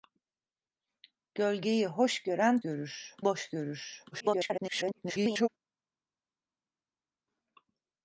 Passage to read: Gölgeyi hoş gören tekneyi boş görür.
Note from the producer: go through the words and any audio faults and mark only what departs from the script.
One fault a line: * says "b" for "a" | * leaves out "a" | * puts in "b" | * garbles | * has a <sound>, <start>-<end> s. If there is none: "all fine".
* says "görür" for "tekneyi"
* garbles